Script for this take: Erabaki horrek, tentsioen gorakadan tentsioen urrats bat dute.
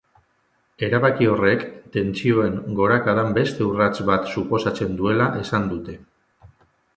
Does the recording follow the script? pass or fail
fail